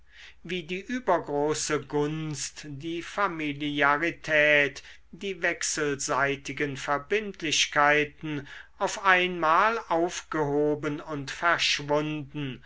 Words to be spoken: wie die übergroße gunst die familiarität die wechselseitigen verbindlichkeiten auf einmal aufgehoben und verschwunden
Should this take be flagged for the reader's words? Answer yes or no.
no